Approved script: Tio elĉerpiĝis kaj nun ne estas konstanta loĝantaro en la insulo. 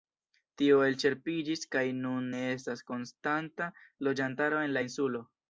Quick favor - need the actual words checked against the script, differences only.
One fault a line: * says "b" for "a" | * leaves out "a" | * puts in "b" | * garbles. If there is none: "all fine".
all fine